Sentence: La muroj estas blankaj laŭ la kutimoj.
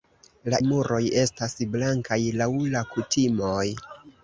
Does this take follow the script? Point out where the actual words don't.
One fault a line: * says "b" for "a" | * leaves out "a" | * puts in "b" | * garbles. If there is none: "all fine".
all fine